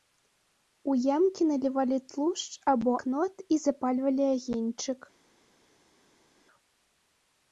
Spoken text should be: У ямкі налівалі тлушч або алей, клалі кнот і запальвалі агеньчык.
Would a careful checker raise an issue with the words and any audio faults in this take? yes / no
yes